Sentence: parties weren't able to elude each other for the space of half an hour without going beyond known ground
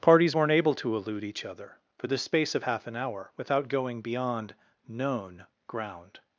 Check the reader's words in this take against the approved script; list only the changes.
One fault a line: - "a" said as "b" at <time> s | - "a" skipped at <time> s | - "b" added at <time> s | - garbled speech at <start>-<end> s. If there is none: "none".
none